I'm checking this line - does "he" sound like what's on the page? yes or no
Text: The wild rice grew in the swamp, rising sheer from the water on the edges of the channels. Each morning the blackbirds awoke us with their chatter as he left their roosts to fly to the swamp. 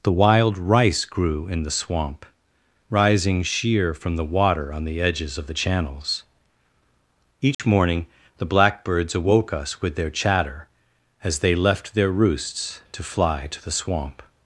no